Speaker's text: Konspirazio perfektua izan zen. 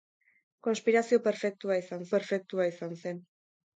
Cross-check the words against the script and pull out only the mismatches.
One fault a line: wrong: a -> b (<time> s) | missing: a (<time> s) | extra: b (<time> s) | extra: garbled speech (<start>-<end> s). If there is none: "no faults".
extra: perfektua izan (2.2 s)